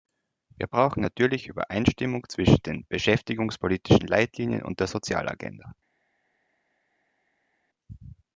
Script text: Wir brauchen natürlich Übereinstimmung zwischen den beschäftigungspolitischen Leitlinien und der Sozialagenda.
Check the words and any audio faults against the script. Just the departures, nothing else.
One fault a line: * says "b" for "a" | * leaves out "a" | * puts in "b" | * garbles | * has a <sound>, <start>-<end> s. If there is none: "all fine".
all fine